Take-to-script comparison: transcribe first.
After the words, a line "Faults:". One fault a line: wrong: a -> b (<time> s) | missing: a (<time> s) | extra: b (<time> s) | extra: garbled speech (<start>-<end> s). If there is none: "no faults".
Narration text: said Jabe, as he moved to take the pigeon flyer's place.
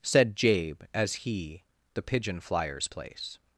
said Jabe, as he the pigeon flyer's place.
Faults:
missing: moved to take (1.6 s)